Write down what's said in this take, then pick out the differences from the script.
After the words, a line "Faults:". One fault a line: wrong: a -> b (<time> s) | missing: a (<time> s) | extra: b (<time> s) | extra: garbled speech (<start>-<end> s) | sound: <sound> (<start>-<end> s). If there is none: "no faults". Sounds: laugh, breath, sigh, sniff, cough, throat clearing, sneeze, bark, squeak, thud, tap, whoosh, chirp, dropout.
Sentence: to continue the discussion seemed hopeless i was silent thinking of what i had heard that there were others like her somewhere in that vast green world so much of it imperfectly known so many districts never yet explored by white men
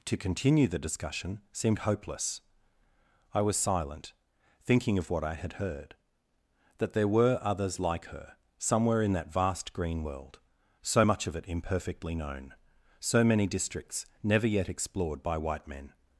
to continue the discussion seemed hopeless i was silent thinking of what i had heard that there were others like her somewhere in that vast green world so much of it imperfectly known so many districts never yet explored by white men
Faults:
no faults